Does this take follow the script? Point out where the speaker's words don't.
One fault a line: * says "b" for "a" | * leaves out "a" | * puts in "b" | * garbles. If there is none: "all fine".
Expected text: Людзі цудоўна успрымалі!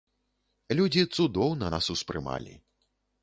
* puts in "нас"